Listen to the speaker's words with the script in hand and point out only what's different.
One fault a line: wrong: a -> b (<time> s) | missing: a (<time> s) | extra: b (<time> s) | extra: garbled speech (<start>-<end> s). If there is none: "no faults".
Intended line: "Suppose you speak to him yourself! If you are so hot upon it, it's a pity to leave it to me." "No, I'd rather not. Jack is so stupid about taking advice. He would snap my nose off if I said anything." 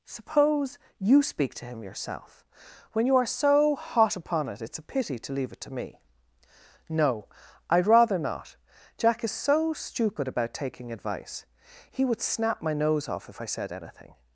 wrong: If -> When (2.9 s)